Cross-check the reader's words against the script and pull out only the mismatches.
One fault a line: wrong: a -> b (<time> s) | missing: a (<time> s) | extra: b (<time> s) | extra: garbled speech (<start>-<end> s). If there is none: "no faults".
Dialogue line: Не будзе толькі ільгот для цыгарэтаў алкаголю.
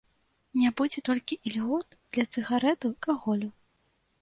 no faults